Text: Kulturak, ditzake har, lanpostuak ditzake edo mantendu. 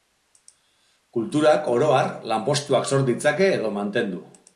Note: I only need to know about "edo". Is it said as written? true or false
true